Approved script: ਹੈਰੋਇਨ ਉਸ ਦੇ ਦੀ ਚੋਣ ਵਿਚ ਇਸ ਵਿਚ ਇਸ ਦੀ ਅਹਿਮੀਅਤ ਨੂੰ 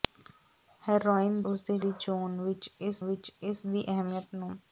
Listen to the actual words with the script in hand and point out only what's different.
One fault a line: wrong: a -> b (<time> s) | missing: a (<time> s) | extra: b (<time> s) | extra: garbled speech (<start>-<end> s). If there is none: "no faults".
no faults